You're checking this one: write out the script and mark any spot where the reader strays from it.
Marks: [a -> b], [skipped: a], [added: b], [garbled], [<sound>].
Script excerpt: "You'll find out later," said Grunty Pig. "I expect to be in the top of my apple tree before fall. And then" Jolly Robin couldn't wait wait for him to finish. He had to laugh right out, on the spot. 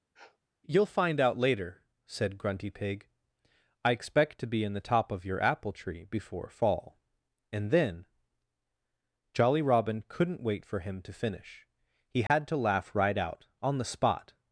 [sniff] "You'll find out later," said Grunty Pig. "I expect to be in the top of [my -> your] apple tree before fall. And then" Jolly Robin couldn't wait [skipped: wait] for him to finish. He had [dropout] to laugh right out, on the spot.